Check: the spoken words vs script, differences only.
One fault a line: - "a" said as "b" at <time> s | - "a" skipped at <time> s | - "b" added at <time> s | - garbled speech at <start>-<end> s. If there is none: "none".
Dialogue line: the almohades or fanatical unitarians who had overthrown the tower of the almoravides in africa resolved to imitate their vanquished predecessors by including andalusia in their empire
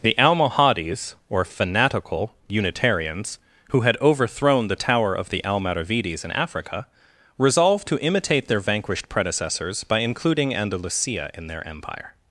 none